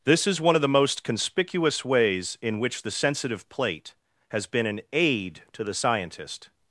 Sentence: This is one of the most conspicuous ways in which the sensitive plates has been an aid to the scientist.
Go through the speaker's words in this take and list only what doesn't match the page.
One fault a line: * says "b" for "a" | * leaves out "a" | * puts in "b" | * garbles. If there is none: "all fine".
* says "plate" for "plates"